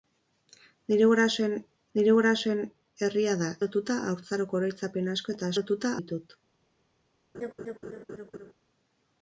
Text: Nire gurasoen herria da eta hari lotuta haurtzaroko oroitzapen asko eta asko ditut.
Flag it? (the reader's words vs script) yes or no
yes